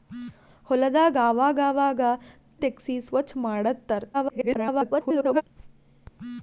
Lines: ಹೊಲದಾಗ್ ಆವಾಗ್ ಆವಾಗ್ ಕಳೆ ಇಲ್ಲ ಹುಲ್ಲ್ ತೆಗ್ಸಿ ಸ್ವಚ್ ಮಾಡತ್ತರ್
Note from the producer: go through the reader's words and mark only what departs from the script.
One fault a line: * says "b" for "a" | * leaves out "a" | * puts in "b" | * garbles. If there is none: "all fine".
* leaves out "ಕಳೆ ಇಲ್ಲ ಹುಲ್ಲ್"
* garbles